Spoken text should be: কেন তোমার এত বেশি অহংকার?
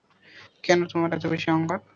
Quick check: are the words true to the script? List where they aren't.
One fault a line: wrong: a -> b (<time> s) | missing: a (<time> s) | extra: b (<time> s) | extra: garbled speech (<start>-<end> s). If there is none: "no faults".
no faults